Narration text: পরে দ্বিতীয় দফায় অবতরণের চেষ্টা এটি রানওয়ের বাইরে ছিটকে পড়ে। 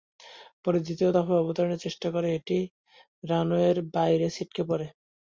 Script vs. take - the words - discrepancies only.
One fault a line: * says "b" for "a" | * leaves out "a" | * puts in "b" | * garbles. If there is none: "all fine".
* puts in "করে"